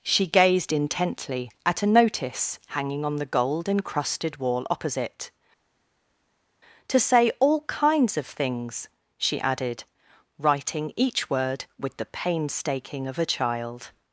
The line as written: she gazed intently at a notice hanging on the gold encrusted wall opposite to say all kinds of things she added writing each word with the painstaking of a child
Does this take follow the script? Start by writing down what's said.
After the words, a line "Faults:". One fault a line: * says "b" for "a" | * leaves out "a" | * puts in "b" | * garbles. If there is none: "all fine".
she gazed intently at a notice hanging on the gold encrusted wall opposite to say all kinds of things she added writing each word with the painstaking of a child
Faults:
all fine